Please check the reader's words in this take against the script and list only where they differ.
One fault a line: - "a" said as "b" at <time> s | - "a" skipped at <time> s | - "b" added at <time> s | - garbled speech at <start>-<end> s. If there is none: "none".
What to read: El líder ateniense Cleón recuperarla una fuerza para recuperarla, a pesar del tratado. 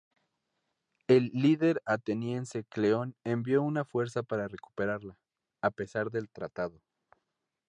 - "recuperarla" said as "envió" at 3.2 s